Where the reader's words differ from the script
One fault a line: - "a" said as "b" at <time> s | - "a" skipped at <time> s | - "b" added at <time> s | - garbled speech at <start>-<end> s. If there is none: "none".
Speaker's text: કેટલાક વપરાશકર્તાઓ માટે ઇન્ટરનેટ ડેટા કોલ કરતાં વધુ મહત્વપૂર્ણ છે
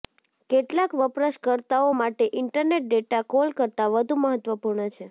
none